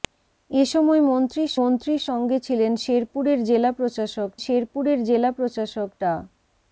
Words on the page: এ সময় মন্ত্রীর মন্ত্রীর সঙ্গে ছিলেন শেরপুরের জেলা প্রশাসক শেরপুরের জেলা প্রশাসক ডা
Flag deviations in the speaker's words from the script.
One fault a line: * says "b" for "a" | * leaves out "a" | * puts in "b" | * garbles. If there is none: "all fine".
all fine